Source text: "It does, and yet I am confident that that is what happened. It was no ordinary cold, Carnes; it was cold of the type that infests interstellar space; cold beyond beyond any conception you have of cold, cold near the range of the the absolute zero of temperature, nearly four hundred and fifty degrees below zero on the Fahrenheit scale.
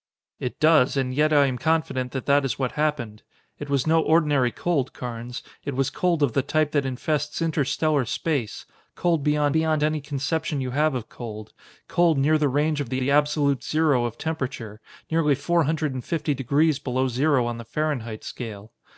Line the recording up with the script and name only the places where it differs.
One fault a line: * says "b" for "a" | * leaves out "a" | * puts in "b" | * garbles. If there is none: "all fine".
all fine